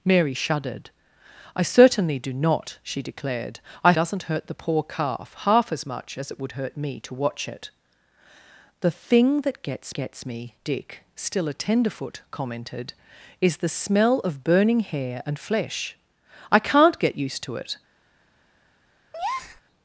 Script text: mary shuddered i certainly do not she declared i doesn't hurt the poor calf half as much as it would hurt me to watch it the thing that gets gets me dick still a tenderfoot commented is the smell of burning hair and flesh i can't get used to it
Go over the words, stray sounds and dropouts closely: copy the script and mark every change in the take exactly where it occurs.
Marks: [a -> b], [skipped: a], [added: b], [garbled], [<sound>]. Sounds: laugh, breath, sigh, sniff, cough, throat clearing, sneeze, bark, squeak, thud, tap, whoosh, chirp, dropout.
mary shuddered i certainly do not she declared i doesn't hurt the poor calf half as much as it would hurt me to watch it the thing that gets gets me dick still a tenderfoot commented is the smell of burning hair and flesh i can't get used to it [breath]